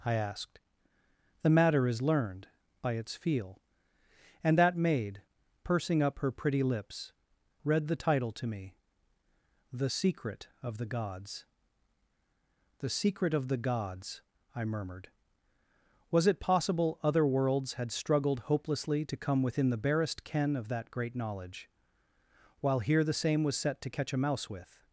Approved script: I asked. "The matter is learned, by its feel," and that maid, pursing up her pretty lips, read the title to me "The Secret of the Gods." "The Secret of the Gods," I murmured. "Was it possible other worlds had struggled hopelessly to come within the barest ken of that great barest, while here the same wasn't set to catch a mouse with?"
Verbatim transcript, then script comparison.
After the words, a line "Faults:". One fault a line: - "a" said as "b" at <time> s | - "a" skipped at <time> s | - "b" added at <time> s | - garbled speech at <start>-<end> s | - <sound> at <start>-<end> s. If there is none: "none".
I asked. "The matter is learned, by its feel," and that maid, pursing up her pretty lips, read the title to me "The Secret of the Gods." "The Secret of the Gods," I murmured. "Was it possible other worlds had struggled hopelessly to come within the barest ken of that great knowledge, while here the same was set to catch a mouse with?"
Faults:
- "barest" said as "knowledge" at 21.2 s
- "wasn't" said as "was" at 23.4 s